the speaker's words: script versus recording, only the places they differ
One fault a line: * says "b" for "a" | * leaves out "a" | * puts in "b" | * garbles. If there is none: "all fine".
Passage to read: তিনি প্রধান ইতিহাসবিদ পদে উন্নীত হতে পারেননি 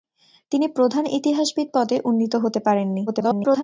* garbles